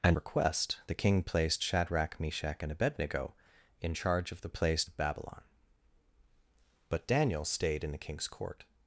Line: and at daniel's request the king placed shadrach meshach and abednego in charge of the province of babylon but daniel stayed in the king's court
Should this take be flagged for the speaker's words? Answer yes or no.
yes